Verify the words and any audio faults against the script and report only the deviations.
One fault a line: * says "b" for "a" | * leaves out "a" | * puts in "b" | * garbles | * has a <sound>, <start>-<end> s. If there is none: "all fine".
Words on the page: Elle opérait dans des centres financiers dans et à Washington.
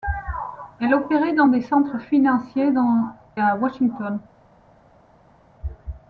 * leaves out "et"